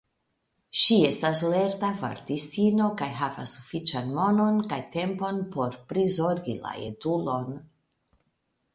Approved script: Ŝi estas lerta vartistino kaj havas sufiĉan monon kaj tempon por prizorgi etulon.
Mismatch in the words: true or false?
true